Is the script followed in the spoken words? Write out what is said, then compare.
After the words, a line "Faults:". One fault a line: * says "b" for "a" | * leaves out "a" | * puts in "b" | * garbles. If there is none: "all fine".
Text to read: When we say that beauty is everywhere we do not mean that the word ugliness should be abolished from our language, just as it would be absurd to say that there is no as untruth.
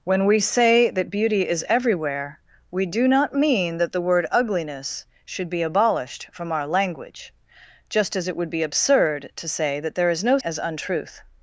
When we say that beauty is everywhere we do not mean that the word ugliness should be abolished from our language, just as it would be absurd to say that there is no as untruth.
Faults:
all fine